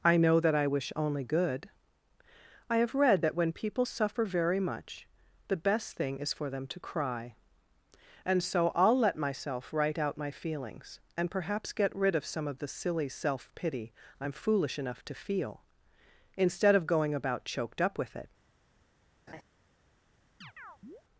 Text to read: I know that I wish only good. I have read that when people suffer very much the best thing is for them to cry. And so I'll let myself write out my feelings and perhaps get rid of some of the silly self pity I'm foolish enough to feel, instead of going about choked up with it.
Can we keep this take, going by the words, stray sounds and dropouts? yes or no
no